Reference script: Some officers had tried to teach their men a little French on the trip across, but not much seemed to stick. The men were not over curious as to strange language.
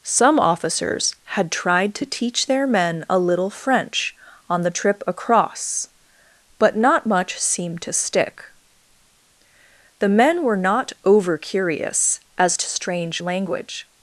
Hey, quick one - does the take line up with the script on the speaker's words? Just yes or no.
yes